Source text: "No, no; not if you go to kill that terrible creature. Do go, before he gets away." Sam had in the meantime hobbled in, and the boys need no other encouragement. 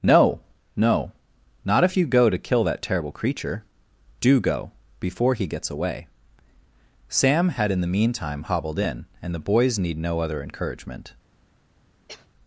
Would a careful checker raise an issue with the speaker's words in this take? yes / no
no